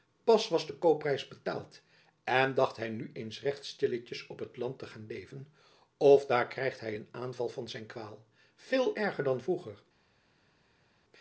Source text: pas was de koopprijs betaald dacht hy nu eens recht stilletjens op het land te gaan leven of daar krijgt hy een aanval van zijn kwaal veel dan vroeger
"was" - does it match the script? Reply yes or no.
yes